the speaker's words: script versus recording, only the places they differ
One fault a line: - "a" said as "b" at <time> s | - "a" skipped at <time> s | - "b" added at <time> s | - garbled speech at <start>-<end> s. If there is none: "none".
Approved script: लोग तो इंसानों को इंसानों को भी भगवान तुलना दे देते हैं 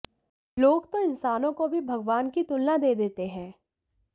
- "इंसानों को" skipped at 1.7 s
- "की" added at 2.3 s